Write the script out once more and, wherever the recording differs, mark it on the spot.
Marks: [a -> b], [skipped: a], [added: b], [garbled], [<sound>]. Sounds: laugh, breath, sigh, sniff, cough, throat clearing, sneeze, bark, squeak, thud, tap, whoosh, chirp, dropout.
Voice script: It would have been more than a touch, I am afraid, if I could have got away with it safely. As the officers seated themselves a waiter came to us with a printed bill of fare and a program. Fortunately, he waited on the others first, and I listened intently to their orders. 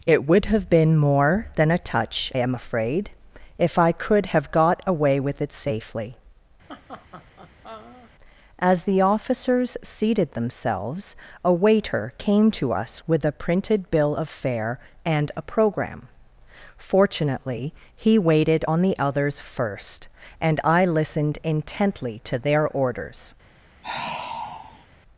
It would have been more than a touch, [skipped: I] am afraid, if I could have got away with it safely. [laugh] As the officers seated themselves a waiter came to us with a printed bill of fare and a program. Fortunately, he waited on the others first, and I listened intently to their orders. [sigh]